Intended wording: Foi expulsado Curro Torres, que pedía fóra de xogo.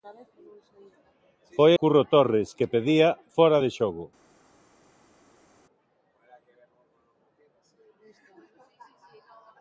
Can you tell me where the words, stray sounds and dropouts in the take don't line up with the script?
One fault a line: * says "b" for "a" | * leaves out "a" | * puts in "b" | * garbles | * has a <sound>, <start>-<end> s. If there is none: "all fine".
* leaves out "expulsado"